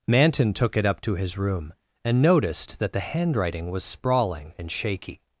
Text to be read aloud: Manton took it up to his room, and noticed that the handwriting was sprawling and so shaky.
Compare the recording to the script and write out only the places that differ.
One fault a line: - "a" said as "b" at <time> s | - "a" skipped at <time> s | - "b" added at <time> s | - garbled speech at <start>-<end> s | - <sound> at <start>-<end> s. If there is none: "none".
- "so" skipped at 4.7 s